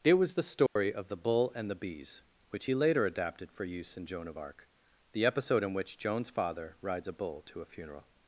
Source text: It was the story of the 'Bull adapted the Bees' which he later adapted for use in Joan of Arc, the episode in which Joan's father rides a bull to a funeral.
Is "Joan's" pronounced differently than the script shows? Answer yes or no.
no